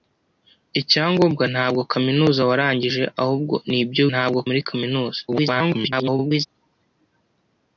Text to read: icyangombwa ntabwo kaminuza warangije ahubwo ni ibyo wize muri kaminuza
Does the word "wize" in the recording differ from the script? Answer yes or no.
yes